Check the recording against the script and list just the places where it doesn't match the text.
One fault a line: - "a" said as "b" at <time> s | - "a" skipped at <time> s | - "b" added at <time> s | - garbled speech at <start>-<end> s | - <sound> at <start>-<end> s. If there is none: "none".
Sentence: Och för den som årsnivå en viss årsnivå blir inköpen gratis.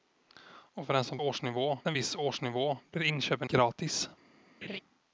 - laugh at 4.6-4.8 s